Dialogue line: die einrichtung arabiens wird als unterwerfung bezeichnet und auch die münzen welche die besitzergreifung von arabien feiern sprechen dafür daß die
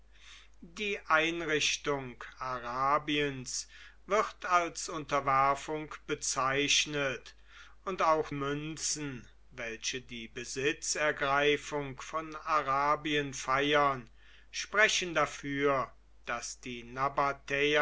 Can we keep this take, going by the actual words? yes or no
no